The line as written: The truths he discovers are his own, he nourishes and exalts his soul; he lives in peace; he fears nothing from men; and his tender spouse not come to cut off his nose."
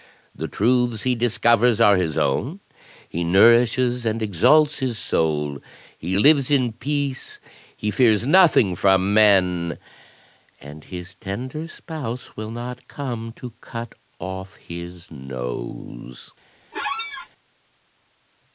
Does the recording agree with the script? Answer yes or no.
no